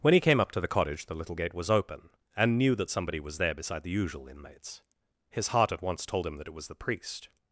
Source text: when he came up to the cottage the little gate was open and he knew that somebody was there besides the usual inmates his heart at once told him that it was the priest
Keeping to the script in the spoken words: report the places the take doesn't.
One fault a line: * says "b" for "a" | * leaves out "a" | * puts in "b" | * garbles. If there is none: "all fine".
* leaves out "he"
* says "beside" for "besides"